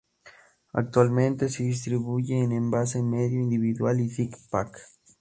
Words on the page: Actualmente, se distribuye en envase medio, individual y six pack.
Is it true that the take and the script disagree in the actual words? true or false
false